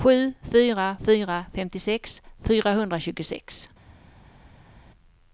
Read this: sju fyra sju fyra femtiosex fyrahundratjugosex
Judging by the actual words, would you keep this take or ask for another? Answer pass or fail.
fail